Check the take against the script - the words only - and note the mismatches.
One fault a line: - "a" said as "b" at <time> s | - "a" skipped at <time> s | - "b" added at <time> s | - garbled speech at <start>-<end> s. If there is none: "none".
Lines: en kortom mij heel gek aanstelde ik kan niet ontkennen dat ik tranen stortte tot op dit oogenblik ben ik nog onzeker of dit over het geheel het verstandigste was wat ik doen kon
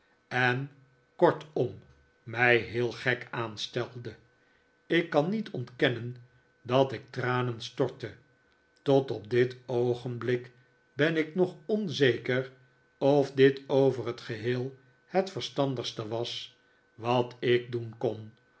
none